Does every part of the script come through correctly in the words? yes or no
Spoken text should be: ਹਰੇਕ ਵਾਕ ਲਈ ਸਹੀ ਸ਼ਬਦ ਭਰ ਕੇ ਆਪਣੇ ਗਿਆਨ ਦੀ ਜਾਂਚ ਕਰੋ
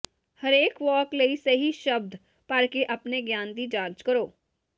yes